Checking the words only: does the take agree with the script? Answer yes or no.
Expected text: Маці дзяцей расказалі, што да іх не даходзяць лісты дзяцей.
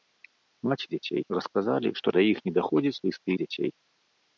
yes